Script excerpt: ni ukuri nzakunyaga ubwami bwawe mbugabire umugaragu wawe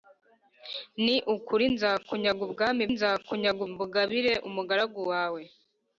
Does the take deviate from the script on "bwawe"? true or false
true